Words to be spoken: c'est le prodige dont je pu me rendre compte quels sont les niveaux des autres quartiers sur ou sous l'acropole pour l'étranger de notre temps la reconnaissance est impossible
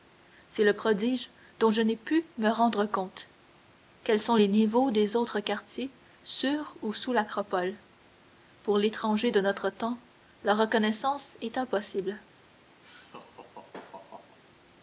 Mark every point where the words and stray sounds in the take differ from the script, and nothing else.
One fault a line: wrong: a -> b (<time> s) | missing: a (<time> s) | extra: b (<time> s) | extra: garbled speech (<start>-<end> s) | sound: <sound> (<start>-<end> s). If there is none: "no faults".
extra: n'ai (1.8 s)
sound: laugh (12.8-14.4 s)